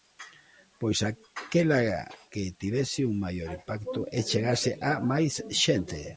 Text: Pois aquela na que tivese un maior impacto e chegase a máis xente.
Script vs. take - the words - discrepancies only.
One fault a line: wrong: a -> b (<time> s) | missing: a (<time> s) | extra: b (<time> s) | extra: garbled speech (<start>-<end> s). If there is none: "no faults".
missing: na (1.8 s)